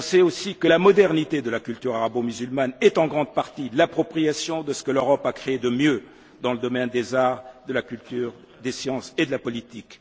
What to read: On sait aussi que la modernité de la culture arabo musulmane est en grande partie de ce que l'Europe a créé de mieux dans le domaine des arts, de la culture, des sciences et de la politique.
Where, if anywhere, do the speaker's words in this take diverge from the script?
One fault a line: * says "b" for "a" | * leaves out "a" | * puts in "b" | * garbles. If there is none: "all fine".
* puts in "l'appropriation"